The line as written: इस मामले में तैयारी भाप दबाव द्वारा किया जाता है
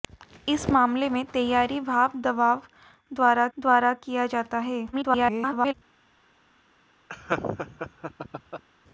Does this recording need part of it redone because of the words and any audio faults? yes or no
yes